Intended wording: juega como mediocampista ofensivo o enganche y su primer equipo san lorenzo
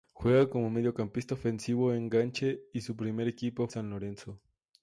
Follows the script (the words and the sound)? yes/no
yes